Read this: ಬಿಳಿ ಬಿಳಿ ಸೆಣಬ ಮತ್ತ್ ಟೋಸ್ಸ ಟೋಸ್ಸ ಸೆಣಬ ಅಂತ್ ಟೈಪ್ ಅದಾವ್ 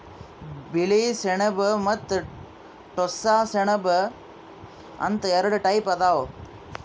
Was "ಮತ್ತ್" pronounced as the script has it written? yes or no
yes